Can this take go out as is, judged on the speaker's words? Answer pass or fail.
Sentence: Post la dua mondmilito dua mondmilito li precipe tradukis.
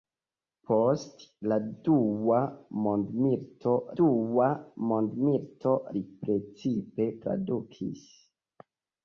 pass